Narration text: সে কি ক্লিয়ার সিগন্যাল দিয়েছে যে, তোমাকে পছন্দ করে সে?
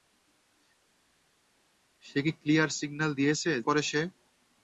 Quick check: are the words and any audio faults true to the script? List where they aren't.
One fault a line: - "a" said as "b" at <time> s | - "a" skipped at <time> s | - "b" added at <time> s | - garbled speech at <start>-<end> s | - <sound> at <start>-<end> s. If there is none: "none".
- "যে তোমাকে পছন্দ" skipped at 3.5 s